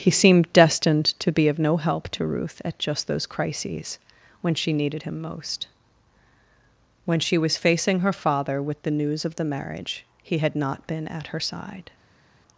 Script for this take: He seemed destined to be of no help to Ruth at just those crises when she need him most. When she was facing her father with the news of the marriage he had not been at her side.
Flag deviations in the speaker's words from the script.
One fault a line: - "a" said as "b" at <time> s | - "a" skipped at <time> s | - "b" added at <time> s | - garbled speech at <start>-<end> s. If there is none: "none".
- "need" said as "needed" at 4.7 s